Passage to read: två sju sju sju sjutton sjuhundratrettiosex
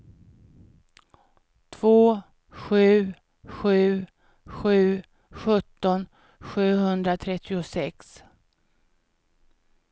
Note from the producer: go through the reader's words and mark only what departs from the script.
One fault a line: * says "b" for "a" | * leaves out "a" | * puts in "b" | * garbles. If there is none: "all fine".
all fine